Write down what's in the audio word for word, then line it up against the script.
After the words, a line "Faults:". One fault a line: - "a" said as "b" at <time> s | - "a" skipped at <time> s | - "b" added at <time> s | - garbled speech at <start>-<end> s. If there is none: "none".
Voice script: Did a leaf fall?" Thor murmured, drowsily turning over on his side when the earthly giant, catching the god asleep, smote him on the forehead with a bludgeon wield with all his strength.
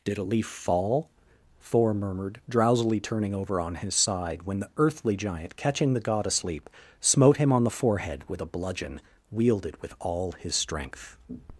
Did a leaf fall?" Thor murmured, drowsily turning over on his side when the earthly giant, catching the god asleep, smote him on the forehead with a bludgeon wielded with all his strength.
Faults:
- "wield" said as "wielded" at 9.3 s